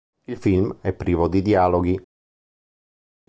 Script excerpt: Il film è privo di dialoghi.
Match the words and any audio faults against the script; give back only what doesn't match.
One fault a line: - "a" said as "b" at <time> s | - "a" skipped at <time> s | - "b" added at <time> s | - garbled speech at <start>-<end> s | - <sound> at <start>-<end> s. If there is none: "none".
none